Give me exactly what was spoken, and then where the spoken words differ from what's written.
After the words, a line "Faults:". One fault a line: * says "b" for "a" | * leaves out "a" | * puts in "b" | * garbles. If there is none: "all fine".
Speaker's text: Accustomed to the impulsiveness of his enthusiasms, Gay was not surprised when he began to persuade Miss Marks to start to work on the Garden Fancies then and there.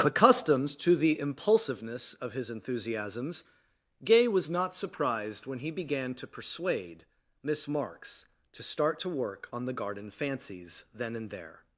Accustomed to the impulsiveness of his enthusiasms, Gay was not surprised when he began to persuade Miss Marks to start to work on the Garden Fancies then and there.
Faults:
all fine